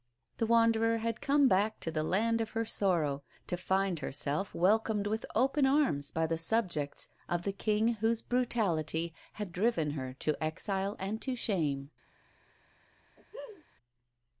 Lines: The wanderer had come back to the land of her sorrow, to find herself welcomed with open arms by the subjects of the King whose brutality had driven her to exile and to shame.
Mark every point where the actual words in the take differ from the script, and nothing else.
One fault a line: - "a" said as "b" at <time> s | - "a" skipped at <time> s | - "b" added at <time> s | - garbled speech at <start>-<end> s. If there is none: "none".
none